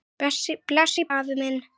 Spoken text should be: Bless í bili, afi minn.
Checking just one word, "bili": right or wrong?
wrong